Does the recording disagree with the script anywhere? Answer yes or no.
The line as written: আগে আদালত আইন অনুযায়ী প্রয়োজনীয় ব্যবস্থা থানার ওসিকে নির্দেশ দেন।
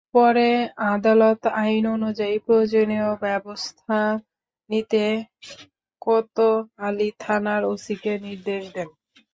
yes